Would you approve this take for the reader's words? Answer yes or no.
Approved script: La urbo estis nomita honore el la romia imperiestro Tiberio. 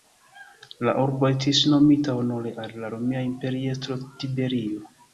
no